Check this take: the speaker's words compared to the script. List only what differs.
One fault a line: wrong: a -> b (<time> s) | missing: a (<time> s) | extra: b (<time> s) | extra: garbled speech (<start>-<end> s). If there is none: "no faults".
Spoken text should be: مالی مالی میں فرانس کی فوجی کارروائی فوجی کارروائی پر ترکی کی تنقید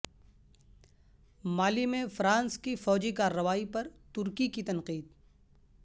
missing: مالی (1.9 s)
missing: فوجی کارروائی (3.6 s)